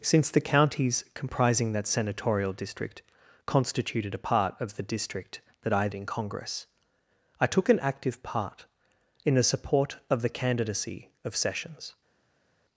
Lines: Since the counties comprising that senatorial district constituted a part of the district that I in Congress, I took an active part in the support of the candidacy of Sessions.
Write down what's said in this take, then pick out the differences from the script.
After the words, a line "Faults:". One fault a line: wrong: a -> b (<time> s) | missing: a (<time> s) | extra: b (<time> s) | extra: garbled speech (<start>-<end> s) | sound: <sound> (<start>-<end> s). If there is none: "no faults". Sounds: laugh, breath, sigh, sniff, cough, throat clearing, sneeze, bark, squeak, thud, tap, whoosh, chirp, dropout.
Since the counties comprising that senatorial district constituted a part of the district that I in Congress, I took an active part in the support of the candidacy of Sessions.
Faults:
no faults